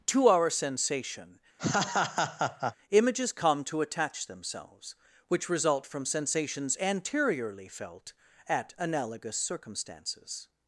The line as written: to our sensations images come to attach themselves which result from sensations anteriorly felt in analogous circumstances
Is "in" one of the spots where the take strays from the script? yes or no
yes